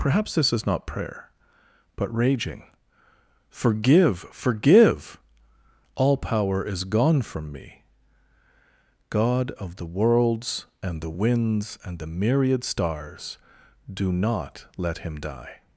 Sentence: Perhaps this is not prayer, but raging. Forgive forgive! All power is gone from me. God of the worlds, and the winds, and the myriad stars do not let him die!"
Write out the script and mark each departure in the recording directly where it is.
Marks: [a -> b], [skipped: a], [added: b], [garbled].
Perhaps this is not prayer, but raging. Forgive forgive! All power is gone from me. God of the worlds, and the winds, and the myriad stars do not let him die!"